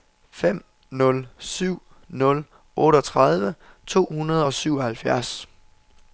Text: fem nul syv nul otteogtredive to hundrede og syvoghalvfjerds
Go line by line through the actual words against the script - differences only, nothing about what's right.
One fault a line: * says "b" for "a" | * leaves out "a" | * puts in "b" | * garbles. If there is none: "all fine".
all fine